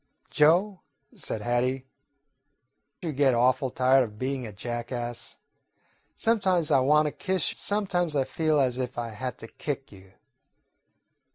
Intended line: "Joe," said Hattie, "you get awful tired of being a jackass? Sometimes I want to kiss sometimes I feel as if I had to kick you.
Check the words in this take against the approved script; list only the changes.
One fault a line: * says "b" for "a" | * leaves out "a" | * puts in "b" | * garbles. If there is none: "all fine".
all fine